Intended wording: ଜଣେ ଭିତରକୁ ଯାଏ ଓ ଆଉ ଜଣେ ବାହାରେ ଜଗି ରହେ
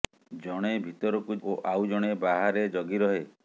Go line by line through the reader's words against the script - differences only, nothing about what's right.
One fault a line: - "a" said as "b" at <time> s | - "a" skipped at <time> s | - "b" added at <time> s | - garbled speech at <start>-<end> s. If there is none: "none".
- "ଯାଏ" skipped at 1.4 s